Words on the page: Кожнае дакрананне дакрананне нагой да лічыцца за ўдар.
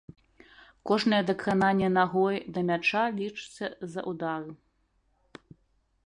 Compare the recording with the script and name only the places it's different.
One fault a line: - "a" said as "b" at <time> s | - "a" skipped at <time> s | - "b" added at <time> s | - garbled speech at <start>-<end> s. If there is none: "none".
- "дакрананне" skipped at 1.9 s
- "мяча" added at 2.7 s